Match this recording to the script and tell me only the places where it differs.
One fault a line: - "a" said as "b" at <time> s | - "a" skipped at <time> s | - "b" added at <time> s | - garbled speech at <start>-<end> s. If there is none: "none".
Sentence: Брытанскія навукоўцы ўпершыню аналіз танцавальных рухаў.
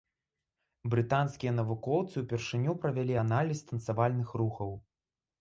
- "правялі" added at 2.9 s